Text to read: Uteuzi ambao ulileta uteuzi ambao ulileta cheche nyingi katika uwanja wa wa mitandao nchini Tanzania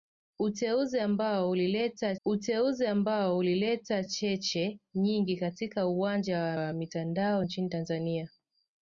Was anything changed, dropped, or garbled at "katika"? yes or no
no